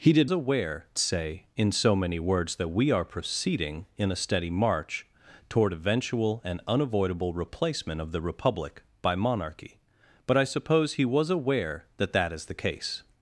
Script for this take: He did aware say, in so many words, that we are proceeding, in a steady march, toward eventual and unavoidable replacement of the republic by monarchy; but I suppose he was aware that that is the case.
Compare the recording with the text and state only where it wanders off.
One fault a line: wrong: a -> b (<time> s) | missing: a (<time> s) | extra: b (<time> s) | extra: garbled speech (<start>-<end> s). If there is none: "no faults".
no faults